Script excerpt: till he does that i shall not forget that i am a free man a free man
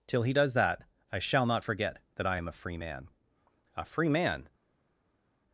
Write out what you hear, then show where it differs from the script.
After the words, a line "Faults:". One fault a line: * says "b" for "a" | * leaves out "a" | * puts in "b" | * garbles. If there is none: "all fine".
till he does that i shall not forget that i am a free man a free man
Faults:
all fine